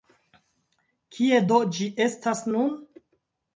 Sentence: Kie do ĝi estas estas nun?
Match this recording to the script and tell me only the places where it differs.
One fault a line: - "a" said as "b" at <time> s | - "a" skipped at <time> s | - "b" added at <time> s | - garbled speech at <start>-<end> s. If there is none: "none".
- "estas" skipped at 2.5 s